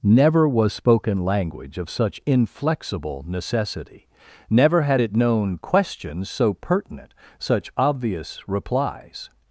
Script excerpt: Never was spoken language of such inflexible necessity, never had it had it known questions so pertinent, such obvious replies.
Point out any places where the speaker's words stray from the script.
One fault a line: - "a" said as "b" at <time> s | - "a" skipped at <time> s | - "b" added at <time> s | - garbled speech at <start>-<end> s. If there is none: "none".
- "had it" skipped at 5.1 s